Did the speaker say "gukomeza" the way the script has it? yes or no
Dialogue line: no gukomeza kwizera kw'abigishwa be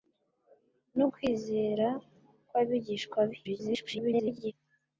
no